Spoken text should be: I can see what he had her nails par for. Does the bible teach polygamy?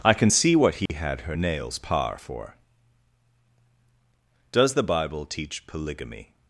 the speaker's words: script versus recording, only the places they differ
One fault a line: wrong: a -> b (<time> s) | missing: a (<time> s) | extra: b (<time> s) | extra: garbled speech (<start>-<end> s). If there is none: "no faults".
no faults